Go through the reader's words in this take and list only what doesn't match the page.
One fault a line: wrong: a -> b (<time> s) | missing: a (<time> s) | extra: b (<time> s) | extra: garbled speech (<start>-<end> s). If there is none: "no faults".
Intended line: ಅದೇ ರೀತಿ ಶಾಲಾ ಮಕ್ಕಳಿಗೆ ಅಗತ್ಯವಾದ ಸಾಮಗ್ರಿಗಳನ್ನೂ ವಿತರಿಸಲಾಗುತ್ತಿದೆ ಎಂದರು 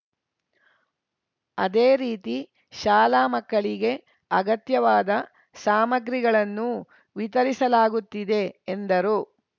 no faults